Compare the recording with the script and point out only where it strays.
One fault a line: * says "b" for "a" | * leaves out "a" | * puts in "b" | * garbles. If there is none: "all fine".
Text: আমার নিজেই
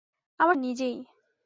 all fine